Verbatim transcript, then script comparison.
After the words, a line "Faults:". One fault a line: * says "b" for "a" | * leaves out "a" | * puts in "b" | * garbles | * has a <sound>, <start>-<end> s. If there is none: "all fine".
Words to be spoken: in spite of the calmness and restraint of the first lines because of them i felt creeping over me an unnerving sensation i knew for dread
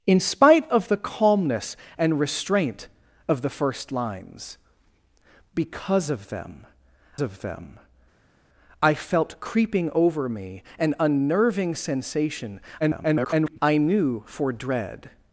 in spite of the calmness and restraint of the first lines because of them of them i felt creeping over me an unnerving sensation [garbled] i knew for dread
Faults:
* puts in "of them"
* garbles